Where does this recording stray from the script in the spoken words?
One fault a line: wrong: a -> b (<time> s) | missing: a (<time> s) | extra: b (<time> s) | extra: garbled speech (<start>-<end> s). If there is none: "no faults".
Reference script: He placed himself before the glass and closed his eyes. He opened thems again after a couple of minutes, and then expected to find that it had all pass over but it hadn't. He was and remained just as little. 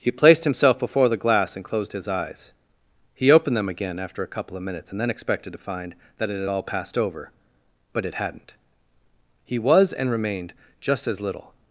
wrong: thems -> them (3.5 s)
wrong: pass -> passed (6.6 s)